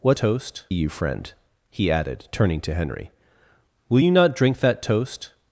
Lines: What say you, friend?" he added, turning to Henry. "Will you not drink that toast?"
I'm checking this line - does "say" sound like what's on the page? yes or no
no